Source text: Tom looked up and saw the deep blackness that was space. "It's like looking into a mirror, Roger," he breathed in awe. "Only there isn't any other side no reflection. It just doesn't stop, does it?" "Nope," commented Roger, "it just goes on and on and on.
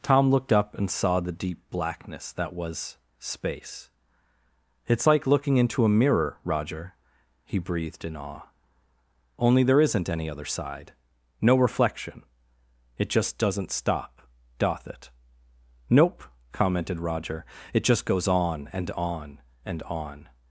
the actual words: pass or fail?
fail